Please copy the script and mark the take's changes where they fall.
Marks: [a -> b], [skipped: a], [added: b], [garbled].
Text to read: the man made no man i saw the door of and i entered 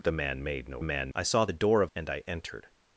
the man made no man i saw the door of and i entered